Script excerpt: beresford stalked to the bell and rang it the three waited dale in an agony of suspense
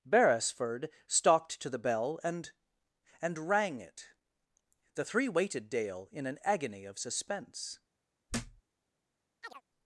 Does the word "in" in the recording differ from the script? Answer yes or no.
no